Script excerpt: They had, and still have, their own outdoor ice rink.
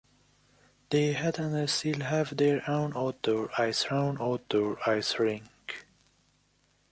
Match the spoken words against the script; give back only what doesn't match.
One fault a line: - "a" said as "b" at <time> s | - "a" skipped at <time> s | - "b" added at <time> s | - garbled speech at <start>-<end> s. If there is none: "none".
- "own outdoor ice" added at 3.9 s